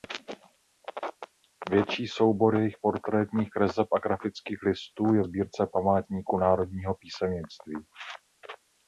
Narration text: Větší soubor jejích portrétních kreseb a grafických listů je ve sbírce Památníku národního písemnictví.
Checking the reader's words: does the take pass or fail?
fail